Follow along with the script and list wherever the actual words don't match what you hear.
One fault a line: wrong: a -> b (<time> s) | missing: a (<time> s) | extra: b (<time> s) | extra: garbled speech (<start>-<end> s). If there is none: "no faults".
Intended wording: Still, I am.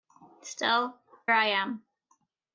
no faults